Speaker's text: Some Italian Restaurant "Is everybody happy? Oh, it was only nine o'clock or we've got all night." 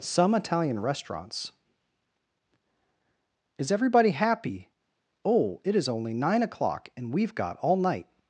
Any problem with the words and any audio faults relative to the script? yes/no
yes